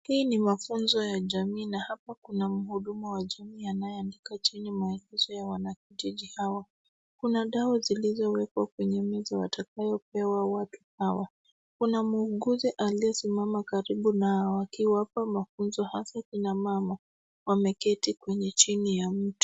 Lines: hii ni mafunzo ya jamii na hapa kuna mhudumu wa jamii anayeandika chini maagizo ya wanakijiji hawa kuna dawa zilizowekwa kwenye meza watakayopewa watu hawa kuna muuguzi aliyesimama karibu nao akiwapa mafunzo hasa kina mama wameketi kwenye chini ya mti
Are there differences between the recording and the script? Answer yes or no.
no